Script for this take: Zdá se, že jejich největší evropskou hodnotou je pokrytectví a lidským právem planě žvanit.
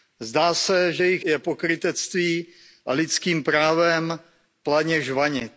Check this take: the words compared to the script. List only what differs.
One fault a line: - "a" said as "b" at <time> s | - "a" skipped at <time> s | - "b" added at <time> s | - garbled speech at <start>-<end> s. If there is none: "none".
- "největší evropskou hodnotou" skipped at 1.2 s